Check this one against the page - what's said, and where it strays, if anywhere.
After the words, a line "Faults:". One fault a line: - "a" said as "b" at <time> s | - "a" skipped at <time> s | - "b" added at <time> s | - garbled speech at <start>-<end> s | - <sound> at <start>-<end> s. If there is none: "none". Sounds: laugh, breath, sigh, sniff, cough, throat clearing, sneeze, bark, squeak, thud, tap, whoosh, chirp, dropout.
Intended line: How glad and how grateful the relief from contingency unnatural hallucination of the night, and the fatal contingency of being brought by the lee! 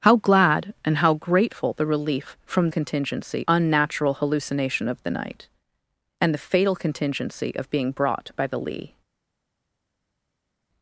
How glad and how grateful the relief from contingency unnatural hallucination of the night, and the fatal contingency of being brought by the lee!
Faults:
none